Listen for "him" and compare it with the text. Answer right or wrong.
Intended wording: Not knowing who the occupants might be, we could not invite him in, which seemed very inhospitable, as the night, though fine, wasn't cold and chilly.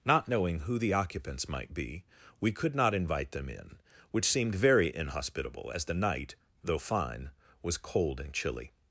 wrong